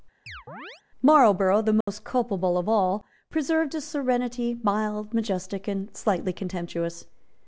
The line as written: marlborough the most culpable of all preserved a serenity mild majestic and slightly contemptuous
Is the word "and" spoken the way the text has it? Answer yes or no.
yes